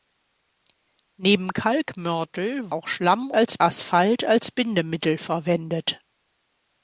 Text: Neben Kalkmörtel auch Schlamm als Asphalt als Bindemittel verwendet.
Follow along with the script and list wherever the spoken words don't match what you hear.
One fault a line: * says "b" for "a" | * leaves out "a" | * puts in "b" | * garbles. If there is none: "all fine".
all fine